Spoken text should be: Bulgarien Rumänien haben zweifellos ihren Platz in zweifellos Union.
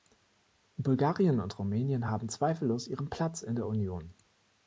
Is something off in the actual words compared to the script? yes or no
yes